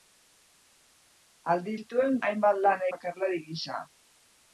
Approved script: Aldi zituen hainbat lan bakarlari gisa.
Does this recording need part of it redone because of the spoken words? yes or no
no